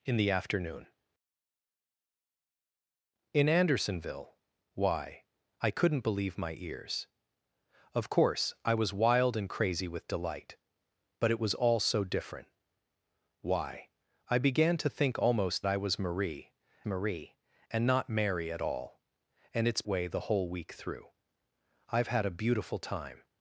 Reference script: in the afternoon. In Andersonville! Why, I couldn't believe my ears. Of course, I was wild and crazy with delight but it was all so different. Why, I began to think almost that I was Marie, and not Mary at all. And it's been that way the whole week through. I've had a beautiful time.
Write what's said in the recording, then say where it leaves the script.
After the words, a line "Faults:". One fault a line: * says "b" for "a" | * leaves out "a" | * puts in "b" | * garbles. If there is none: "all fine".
in the afternoon. In Andersonville! Why, I couldn't believe my ears. Of course, I was wild and crazy with delight but it was all so different. Why, I began to think almost I was Marie Marie, and not Mary at all. And it's way the whole week through. I've had a beautiful time.
Faults:
* leaves out "that"
* puts in "Marie"
* leaves out "been that"